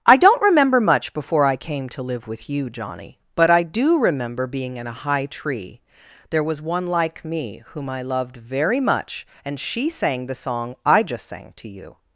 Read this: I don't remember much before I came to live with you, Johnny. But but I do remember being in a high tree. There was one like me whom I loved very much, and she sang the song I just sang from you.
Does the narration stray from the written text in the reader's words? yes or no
yes